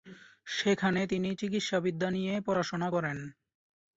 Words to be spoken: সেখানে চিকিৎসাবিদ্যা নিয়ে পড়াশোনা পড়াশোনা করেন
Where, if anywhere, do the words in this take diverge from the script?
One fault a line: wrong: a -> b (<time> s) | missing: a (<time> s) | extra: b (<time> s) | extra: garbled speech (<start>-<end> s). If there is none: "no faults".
extra: তিনি (1.1 s)
missing: পড়াশোনা (2.9 s)